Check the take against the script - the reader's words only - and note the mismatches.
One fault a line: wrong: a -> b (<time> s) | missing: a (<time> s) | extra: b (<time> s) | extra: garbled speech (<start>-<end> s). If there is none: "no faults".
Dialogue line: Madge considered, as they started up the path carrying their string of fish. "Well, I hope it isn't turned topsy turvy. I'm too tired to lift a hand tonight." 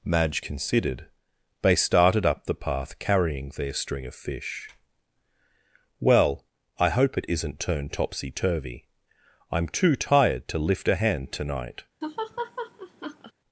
missing: as (1.1 s)